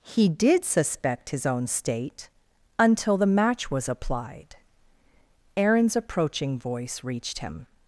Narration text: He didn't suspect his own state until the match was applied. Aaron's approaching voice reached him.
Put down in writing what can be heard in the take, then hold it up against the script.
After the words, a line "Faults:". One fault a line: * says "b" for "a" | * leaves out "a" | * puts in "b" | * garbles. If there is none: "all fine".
He did suspect his own state until the match was applied. Aaron's approaching voice reached him.
Faults:
* says "did" for "didn't"